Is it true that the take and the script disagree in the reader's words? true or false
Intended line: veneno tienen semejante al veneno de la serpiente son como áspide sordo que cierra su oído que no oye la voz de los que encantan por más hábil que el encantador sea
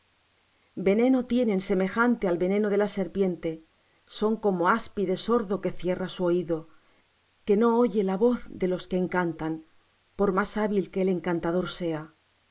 false